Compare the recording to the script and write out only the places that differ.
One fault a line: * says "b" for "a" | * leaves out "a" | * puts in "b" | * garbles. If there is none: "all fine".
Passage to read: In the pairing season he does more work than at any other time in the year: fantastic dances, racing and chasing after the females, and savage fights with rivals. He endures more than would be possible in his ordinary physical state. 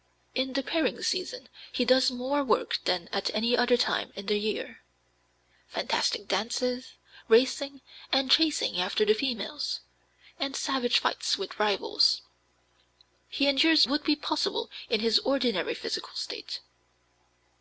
* leaves out "more than"